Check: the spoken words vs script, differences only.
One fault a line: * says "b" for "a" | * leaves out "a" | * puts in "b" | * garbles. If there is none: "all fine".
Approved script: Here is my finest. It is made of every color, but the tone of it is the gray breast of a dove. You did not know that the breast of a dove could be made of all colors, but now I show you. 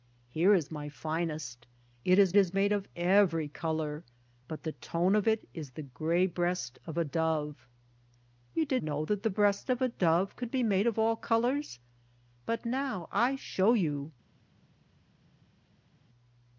* puts in "is"
* leaves out "not"